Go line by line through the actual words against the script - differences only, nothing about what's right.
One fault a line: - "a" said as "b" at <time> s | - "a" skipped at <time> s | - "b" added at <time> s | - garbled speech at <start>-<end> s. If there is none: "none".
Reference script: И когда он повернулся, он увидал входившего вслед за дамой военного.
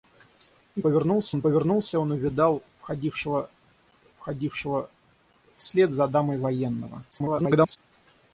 - "когда" said as "повернулся" at 0.8 s
- "входившего" added at 4.2 s
- garbled speech at 7.1-7.8 s